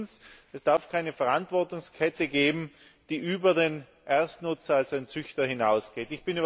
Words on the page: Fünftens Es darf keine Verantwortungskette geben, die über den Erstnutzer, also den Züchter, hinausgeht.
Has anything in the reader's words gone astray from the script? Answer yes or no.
no